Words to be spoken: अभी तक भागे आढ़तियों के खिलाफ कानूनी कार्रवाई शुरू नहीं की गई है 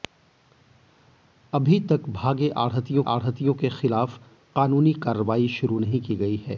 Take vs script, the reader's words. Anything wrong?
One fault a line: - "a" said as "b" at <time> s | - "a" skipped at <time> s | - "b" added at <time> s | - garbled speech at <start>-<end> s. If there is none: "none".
- "आढ़तियों" added at 3.1 s